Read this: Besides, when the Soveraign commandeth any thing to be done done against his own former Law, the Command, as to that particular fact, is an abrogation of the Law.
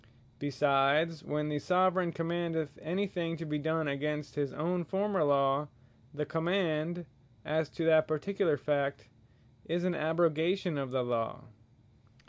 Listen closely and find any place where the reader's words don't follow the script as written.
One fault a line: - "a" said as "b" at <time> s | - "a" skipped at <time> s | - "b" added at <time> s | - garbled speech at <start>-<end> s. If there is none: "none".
- "done" skipped at 3.9 s